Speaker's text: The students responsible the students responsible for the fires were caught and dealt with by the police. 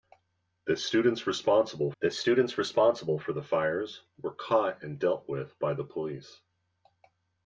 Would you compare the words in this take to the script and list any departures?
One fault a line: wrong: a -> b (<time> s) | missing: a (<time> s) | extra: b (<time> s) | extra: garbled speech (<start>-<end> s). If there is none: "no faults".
no faults